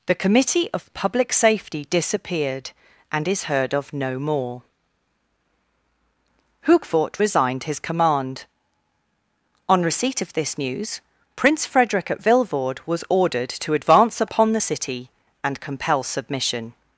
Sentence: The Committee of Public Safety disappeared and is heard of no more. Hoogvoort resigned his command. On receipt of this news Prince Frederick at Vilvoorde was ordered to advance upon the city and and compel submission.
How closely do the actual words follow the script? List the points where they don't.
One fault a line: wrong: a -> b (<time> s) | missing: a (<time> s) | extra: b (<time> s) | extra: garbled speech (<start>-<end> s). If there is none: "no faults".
missing: and (15.6 s)